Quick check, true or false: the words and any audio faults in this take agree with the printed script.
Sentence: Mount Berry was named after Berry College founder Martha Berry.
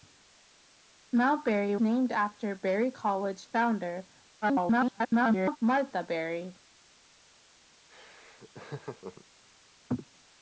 false